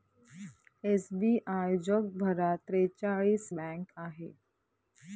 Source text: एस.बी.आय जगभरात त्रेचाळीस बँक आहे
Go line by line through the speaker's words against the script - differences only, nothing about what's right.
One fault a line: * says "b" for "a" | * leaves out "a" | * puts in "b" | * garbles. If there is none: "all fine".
all fine